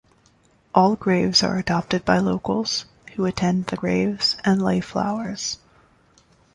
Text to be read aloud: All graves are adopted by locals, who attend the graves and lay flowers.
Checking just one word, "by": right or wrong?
right